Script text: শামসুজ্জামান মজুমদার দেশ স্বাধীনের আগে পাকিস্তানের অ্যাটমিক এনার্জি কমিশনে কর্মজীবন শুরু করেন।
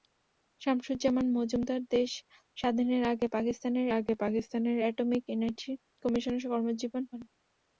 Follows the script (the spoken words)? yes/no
no